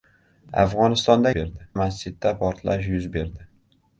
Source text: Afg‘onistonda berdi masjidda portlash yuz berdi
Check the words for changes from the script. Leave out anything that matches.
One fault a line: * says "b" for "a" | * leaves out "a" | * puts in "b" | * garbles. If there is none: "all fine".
all fine